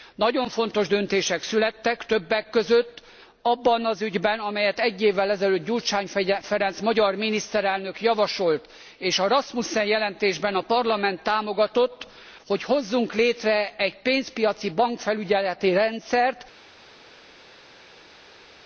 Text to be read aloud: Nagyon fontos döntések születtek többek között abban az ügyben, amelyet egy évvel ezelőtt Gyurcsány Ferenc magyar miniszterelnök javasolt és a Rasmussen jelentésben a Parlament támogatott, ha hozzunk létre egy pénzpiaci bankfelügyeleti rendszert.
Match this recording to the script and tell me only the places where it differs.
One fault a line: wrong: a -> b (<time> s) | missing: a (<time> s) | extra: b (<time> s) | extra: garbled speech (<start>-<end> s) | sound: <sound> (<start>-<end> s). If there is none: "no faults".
wrong: ha -> hogy (12.5 s)